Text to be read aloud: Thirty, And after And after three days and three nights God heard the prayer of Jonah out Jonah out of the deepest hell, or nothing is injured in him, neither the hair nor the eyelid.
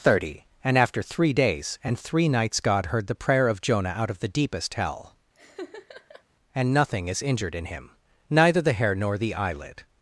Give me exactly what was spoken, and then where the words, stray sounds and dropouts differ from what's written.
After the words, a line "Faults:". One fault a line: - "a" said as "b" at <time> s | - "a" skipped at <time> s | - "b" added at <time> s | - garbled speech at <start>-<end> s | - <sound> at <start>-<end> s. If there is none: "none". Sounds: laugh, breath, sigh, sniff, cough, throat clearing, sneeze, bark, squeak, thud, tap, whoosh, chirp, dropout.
Thirty, And after three days and three nights God heard the prayer of Jonah out of the deepest hell, and nothing is injured in him, neither the hair nor the eyelid.
Faults:
- "And after" skipped at 1.0 s
- "Jonah out" skipped at 4.1 s
- laugh at 5.3-6.2 s
- "or" said as "and" at 6.5 s